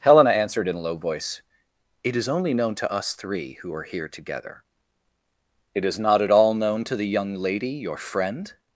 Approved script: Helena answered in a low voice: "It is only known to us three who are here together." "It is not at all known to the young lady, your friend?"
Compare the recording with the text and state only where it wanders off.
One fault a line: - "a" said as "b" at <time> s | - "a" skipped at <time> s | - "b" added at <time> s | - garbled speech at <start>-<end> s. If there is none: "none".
none